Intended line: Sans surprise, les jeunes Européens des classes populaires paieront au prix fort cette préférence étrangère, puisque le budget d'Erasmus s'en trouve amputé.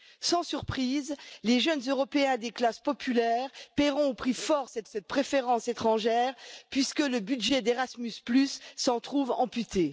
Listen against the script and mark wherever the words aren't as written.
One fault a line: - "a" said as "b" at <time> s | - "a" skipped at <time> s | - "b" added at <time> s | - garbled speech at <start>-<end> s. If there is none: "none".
- "cette" added at 4.9 s